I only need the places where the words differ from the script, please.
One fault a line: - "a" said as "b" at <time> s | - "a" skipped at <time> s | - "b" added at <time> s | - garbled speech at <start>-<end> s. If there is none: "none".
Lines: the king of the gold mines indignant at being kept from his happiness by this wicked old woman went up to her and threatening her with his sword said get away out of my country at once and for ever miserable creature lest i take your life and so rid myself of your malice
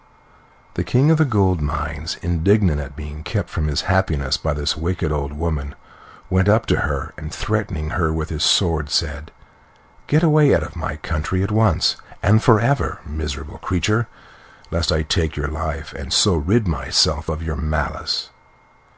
none